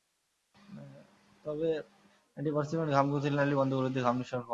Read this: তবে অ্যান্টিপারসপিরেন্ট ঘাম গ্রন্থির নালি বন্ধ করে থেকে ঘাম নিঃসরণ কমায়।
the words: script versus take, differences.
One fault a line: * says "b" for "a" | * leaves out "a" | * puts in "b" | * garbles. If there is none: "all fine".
* says "দিয়ে" for "থেকে"